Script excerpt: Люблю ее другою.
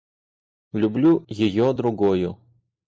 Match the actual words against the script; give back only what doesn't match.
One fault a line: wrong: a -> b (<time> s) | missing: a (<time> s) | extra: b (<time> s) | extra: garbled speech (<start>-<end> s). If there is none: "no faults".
no faults